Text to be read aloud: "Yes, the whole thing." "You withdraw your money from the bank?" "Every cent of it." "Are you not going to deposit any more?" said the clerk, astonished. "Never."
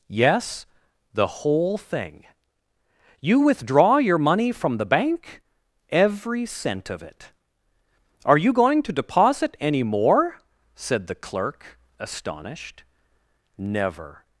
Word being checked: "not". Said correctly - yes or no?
no